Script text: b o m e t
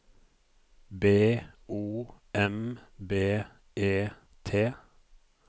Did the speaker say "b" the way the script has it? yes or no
yes